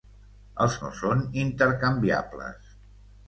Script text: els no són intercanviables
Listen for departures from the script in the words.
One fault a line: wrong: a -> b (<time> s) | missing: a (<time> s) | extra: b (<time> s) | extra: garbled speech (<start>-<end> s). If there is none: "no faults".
no faults